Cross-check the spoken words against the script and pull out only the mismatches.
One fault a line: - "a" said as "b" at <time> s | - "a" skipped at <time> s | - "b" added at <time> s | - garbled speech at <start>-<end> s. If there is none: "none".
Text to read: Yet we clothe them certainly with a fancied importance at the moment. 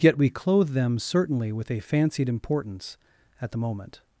none